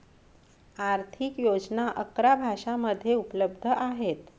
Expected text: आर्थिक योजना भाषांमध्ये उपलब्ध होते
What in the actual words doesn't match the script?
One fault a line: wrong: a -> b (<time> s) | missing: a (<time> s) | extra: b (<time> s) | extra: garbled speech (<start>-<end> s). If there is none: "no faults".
extra: अकरा (2.0 s)
wrong: होते -> आहेत (3.7 s)